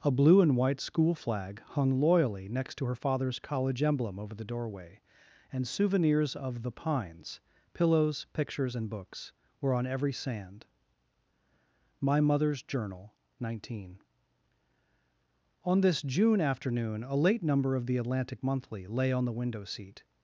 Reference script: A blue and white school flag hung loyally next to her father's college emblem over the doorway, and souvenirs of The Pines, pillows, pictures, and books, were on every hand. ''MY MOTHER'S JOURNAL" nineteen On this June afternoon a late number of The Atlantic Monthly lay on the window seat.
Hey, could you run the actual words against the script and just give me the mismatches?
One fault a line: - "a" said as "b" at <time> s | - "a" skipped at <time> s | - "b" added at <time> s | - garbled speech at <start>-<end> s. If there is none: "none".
- "hand" said as "sand" at 10.1 s